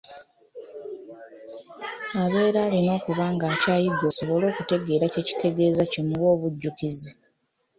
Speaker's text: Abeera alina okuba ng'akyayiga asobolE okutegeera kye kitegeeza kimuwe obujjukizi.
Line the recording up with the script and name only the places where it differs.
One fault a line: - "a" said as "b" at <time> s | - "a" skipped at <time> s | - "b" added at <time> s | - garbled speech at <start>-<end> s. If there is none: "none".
none